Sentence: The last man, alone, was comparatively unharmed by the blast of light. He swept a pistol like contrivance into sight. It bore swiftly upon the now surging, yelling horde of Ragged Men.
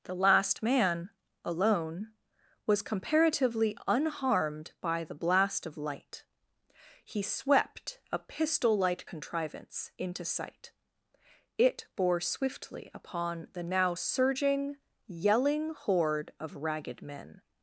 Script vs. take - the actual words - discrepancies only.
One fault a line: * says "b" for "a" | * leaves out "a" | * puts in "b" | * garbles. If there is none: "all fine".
all fine